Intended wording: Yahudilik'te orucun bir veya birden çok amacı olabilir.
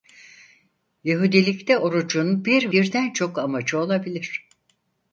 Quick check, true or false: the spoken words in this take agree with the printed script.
false